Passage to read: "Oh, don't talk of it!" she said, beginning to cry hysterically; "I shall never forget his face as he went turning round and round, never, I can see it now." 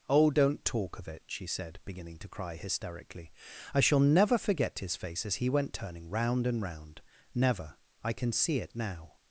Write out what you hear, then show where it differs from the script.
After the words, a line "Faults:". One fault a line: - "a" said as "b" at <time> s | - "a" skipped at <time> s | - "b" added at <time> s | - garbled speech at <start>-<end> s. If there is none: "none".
"Oh, don't talk of it!" she said, beginning to cry hysterically; "I shall never forget his face as he went turning round and round, never, I can see it now."
Faults:
none